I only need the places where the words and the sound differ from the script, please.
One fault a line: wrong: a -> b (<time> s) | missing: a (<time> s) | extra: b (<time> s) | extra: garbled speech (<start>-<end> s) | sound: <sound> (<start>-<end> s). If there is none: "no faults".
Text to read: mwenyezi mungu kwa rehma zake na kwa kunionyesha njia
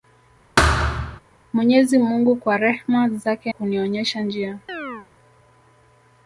sound: thud (0.6-1.2 s)
missing: na kwa (3.5 s)
sound: chirp (4.7-5.1 s)